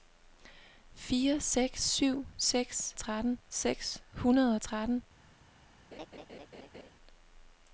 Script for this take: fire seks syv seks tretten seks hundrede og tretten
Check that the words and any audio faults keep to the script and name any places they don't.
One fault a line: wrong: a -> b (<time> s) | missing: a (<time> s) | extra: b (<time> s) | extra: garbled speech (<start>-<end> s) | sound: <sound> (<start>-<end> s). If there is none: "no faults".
sound: laugh (5.9-6.9 s)